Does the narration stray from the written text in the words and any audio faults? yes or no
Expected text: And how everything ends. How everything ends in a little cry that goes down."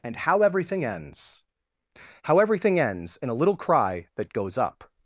yes